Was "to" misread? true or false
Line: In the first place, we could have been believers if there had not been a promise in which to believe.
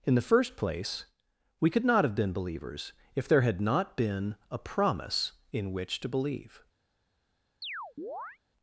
false